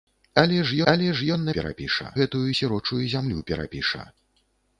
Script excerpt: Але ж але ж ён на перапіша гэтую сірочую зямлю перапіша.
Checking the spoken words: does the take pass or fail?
pass